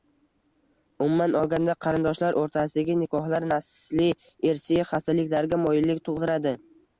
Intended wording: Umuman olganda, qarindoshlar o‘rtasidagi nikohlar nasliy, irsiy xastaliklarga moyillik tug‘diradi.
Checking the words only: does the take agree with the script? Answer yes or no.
yes